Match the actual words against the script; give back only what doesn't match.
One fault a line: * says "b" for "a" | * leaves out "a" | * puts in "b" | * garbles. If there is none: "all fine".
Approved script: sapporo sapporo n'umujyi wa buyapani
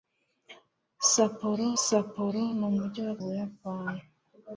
all fine